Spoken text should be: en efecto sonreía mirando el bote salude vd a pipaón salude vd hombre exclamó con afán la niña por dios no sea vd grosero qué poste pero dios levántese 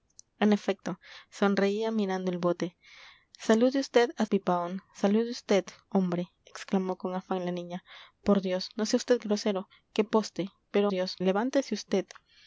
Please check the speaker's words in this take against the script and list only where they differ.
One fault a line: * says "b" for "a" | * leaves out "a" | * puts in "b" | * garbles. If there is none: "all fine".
all fine